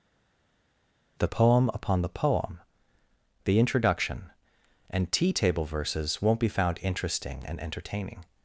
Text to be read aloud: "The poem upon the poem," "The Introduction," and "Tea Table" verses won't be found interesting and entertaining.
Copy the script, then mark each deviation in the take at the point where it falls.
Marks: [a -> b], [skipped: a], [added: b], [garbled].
"The poem upon the poem," "The Introduction," and "Tea Table" verses won't be found interesting and entertaining.